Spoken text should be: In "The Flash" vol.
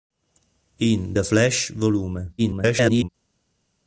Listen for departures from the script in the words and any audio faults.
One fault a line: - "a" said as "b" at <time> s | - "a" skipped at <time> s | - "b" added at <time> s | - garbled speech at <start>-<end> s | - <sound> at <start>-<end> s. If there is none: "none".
- garbled speech at 2.4-3.1 s